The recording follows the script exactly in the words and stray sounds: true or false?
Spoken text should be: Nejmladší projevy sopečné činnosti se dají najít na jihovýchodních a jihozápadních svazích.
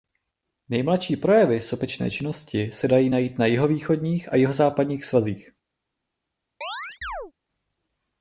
false